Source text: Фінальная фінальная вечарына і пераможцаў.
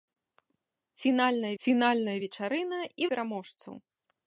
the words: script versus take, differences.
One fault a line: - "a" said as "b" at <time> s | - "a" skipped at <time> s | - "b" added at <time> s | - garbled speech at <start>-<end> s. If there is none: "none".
none